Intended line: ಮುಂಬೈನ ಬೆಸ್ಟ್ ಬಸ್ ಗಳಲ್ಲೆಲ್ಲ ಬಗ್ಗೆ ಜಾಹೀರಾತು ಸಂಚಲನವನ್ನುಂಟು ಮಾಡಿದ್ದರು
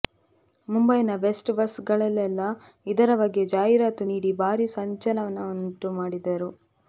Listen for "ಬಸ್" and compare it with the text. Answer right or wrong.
right